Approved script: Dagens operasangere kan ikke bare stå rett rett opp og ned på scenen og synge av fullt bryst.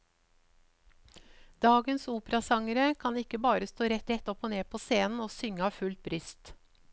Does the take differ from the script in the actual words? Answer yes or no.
no